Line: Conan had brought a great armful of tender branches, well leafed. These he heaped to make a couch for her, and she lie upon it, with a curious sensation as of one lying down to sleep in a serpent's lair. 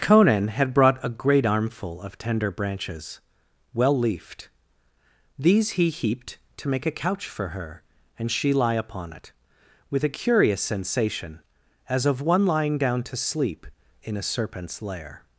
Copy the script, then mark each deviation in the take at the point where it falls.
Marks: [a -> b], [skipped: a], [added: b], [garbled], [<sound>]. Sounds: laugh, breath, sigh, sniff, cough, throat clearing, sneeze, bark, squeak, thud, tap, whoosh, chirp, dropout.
Conan had brought a great armful of tender branches, well leafed. These he heaped to make a couch for her, and she lie upon it, with a curious sensation as of one lying down to sleep in a serpent's lair.